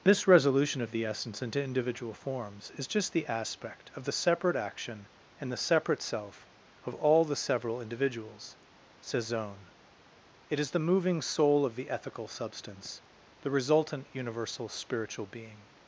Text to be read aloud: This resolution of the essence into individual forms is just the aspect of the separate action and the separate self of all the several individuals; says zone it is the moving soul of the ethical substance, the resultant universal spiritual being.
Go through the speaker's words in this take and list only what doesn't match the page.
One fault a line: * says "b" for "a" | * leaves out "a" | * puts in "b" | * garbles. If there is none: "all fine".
all fine